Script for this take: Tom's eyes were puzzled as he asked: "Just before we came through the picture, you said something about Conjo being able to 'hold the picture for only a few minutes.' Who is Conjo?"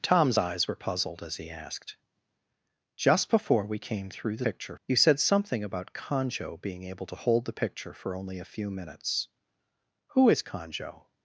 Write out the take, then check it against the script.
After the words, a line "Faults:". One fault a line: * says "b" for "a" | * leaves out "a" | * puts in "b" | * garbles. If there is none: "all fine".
Tom's eyes were puzzled as he asked: "Just before we came through the picture, you said something about Conjo being able to 'hold the picture for only a few minutes.' Who is Conjo?"
Faults:
all fine